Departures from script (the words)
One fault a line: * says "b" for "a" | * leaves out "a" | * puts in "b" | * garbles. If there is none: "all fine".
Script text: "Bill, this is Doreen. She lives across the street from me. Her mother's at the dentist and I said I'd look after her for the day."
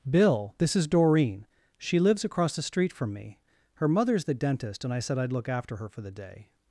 * leaves out "at"